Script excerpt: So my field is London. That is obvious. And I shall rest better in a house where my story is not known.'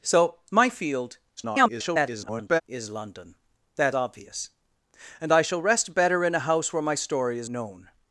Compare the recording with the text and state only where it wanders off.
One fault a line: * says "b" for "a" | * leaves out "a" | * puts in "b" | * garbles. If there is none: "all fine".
* garbles
* leaves out "is"
* leaves out "not"